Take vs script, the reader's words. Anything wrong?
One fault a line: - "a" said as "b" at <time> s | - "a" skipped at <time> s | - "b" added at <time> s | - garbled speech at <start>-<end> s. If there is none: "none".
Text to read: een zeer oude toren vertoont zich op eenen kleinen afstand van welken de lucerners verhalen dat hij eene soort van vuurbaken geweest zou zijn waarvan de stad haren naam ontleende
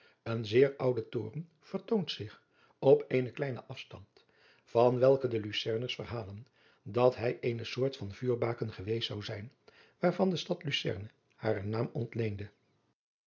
- "lucerne" added at 10.6 s